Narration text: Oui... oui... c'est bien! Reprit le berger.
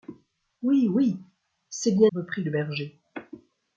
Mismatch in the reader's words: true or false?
false